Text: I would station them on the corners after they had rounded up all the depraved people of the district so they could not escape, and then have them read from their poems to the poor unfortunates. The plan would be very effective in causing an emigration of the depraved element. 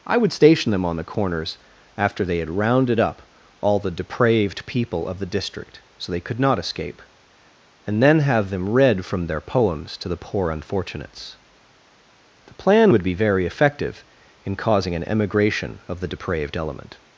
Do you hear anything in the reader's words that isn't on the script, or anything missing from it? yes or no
no